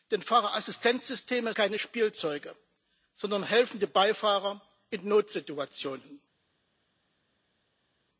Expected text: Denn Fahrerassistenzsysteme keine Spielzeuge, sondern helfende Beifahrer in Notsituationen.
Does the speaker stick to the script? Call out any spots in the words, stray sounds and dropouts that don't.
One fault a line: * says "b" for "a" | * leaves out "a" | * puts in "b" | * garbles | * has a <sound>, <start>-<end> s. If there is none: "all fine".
all fine